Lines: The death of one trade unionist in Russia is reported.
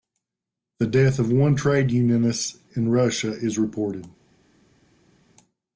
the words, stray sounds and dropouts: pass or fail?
pass